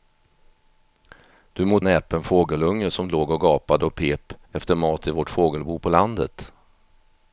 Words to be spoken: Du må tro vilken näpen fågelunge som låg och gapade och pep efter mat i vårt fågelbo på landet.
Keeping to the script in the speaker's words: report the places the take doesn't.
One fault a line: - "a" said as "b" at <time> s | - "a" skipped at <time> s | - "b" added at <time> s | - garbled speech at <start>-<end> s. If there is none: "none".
- "tro vilken" skipped at 1.8 s